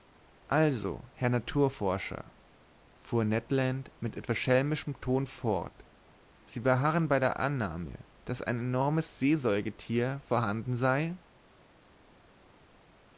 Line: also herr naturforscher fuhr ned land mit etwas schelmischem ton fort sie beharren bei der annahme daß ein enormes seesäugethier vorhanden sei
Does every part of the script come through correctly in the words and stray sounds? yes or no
yes